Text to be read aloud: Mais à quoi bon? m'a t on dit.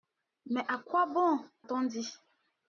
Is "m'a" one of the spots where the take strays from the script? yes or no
yes